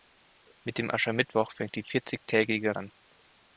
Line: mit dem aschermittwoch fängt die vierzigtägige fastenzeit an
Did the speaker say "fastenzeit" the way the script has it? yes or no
no